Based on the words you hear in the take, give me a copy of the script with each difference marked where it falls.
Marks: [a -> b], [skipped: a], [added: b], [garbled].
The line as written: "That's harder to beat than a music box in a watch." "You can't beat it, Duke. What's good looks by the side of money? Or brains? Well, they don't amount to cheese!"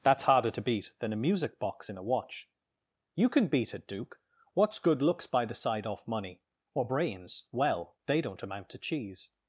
"That's harder to beat than a music box in a watch." "You [can't -> can] beat it, Duke. What's good looks by the side [of -> off] money? Or brains? Well, they don't amount to cheese!"